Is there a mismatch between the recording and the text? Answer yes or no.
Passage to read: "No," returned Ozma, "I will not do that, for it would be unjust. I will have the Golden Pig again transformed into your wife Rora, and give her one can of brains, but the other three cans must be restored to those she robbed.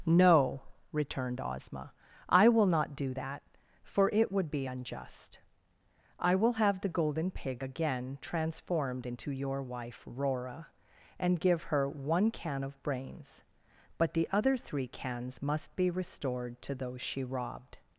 no